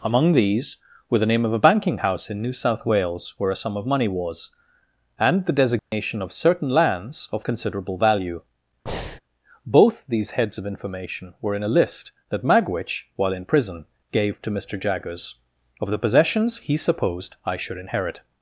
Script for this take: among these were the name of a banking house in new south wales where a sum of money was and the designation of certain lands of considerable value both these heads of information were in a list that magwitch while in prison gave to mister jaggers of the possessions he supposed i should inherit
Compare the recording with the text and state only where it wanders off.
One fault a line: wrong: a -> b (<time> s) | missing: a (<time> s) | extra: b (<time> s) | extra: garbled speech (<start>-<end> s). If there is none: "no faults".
no faults